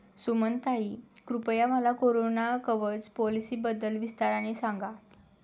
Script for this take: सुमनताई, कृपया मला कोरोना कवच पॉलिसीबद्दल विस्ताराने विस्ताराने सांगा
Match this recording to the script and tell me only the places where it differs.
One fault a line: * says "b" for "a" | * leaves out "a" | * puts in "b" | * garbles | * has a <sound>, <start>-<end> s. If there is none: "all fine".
* leaves out "विस्ताराने"